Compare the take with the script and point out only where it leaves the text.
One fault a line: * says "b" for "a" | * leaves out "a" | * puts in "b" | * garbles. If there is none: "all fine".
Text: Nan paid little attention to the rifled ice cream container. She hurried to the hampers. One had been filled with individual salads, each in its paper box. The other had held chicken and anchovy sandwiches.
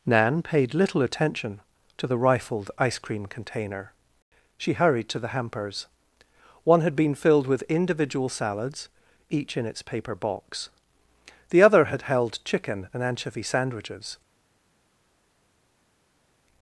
all fine